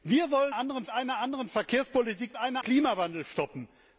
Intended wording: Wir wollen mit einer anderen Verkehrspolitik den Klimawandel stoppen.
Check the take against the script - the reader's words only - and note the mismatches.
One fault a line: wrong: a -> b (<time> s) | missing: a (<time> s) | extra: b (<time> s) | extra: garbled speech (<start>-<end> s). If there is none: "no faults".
wrong: mit -> anderen (0.5 s)
wrong: den -> einer (2.4 s)